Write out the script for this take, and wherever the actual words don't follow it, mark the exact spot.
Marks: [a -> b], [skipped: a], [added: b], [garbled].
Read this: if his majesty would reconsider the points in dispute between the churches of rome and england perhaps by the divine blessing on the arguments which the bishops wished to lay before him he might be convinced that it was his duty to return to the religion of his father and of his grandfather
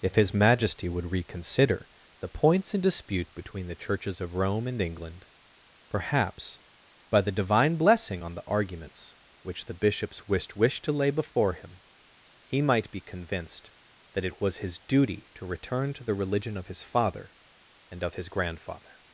if his majesty would reconsider the points in dispute between the churches of rome and england perhaps by the divine blessing on the arguments which the bishops wished [added: wished] to lay before him he might be convinced that it was his duty to return to the religion of his father and of his grandfather